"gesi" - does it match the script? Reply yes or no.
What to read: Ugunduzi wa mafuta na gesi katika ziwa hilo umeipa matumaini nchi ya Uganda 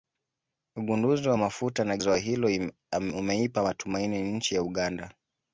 no